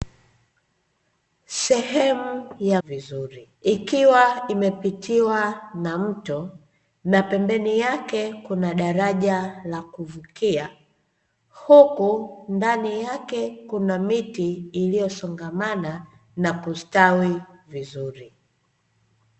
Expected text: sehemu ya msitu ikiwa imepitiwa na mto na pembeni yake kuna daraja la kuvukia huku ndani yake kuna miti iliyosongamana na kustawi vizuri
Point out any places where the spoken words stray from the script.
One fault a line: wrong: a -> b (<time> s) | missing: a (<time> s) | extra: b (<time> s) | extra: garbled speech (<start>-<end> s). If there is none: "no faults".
wrong: msitu -> vizuri (2.8 s)